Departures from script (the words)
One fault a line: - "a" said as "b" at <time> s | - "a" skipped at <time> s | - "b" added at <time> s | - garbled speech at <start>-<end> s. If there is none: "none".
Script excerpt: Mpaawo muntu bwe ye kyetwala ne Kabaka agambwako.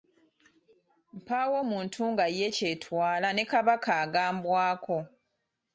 - "bwe" said as "nga" at 2.1 s